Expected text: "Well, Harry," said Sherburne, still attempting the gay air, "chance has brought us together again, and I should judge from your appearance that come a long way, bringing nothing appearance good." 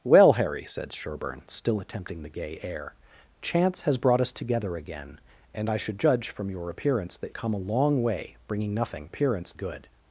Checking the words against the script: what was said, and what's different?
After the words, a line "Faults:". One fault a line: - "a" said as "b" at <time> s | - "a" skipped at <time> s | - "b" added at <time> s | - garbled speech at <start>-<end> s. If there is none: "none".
"Well, Harry," said Sherburne, still attempting the gay air, "chance has brought us together again, and I should judge from your appearance that come a long way, bringing nothing appearance good."
Faults:
none